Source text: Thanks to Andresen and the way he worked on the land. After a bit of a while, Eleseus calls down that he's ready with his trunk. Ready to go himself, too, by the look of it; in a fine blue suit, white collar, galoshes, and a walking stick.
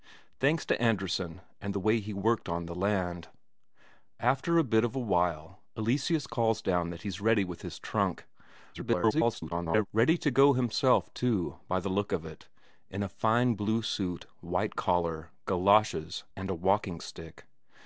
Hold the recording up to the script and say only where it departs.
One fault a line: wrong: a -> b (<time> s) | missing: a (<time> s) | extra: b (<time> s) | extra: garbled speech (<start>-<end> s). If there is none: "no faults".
extra: garbled speech (8.7-9.9 s)